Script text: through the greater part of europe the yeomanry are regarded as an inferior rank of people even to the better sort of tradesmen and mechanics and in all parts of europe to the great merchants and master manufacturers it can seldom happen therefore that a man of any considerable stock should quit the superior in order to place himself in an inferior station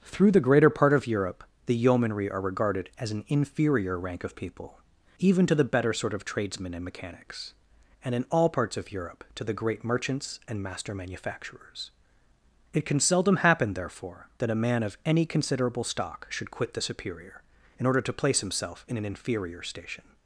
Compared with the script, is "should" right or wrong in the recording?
right